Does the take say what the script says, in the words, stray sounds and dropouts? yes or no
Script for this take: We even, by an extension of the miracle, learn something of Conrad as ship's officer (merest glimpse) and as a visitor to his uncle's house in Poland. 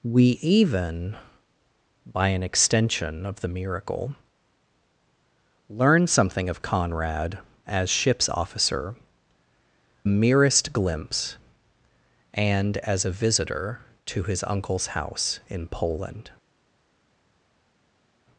yes